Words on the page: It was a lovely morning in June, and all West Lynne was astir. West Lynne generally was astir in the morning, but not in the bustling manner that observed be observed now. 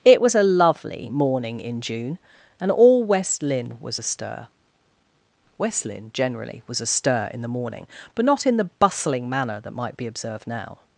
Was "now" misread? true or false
false